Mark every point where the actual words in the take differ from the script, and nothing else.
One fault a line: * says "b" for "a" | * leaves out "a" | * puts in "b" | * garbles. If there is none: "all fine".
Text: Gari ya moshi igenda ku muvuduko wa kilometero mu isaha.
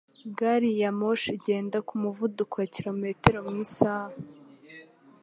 all fine